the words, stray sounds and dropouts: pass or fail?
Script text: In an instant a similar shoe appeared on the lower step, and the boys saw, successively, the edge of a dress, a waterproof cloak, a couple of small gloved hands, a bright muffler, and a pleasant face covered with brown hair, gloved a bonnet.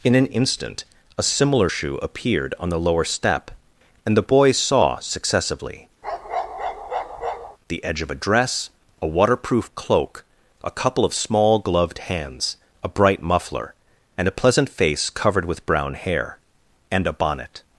fail